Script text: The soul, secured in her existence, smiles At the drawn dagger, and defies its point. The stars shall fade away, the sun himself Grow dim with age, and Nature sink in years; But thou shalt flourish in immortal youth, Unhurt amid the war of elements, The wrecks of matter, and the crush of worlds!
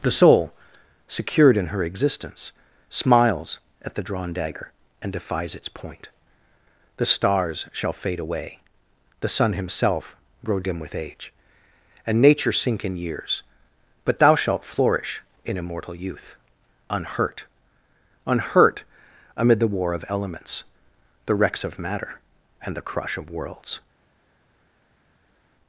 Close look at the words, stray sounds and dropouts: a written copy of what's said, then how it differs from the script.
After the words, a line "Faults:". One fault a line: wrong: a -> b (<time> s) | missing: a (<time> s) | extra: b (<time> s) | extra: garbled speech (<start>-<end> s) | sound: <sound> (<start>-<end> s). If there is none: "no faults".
The soul, secured in her existence, smiles At the drawn dagger, and defies its point. The stars shall fade away, the sun himself Grow dim with age, and Nature sink in years; But thou shalt flourish in immortal youth, Unhurt Unhurt amid the war of elements, The wrecks of matter, and the crush of worlds!
Faults:
extra: Unhurt (18.2 s)